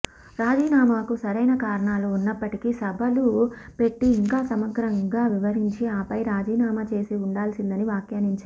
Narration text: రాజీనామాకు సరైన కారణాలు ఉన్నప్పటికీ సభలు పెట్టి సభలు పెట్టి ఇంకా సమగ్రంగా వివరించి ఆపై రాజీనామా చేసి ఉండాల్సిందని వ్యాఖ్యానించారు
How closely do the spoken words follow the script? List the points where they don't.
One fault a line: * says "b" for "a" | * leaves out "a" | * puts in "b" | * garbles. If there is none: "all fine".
* leaves out "సభలు పెట్టి"